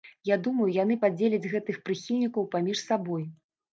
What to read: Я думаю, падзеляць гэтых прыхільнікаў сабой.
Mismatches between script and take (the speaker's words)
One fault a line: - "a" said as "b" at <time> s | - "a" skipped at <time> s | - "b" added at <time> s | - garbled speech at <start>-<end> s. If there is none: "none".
- "яны" added at 0.8 s
- "паміж" added at 2.6 s